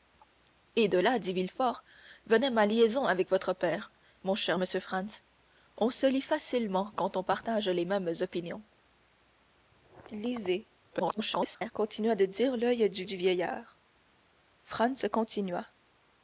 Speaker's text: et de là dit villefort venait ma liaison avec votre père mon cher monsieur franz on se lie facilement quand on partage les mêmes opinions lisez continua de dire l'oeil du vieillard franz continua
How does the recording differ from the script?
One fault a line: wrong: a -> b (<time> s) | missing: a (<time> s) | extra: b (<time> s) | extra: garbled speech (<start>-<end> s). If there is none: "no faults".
extra: garbled speech (10.9-11.7 s)
extra: du (13.0 s)